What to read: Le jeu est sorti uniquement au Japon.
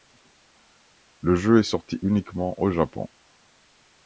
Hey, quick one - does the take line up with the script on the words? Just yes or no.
yes